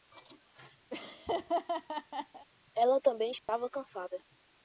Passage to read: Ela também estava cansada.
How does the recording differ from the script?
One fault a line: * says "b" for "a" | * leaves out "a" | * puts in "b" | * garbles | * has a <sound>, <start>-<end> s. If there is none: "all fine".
* has a laugh, 0.9-2.5 s
* has a dropout, 3.4-3.5 s